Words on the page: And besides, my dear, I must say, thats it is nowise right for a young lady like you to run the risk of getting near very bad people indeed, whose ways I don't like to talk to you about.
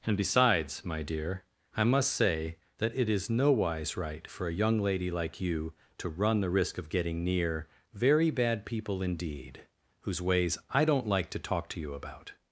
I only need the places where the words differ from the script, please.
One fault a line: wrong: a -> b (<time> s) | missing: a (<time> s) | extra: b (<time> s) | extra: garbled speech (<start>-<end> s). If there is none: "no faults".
wrong: thats -> that (2.8 s)